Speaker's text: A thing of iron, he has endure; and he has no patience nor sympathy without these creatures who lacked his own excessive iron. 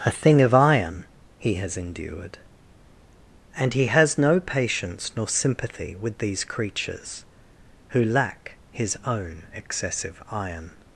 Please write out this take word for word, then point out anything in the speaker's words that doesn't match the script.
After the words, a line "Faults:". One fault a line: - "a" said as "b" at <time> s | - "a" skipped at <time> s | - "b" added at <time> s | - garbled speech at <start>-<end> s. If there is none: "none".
A thing of iron, he has endured; and he has no patience nor sympathy with these creatures who lack his own excessive iron.
Faults:
- "endure" said as "endured" at 1.8 s
- "without" said as "with" at 6.0 s
- "lacked" said as "lack" at 8.0 s